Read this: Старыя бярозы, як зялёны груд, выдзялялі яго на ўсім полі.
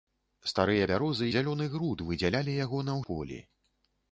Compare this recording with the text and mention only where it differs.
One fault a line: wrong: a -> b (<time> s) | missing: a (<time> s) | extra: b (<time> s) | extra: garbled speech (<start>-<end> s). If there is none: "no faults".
missing: як (1.3 s)
missing: ўсім (3.0 s)